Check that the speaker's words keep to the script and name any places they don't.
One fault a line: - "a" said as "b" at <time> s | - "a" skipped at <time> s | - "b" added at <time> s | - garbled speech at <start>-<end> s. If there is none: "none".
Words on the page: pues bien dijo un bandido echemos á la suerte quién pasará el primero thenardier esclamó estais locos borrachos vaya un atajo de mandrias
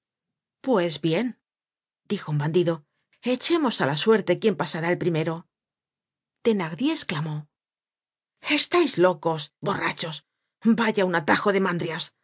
none